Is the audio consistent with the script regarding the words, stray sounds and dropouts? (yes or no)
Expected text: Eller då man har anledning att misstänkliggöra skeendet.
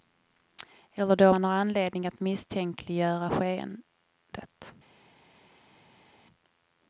yes